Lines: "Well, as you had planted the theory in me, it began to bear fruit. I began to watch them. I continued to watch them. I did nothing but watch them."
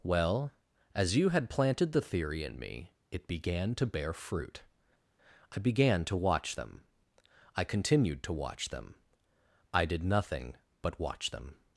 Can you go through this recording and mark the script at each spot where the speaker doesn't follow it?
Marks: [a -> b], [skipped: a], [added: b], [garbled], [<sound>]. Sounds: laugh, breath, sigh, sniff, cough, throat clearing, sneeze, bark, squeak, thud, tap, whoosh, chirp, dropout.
"Well, as you had planted the theory in me, it began to bear fruit. I began to watch them. I continued to watch them. I did nothing but watch them."